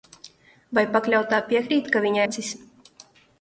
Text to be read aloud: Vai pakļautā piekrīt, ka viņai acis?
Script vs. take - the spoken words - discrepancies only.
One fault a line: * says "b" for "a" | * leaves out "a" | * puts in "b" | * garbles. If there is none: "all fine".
all fine